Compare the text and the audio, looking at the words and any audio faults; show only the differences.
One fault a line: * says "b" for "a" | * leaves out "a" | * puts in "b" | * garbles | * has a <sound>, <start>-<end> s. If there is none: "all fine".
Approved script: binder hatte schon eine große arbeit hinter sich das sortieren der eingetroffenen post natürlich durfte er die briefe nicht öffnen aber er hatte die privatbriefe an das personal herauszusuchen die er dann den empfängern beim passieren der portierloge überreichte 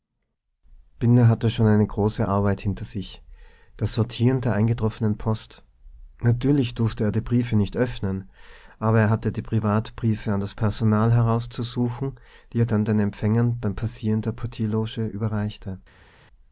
all fine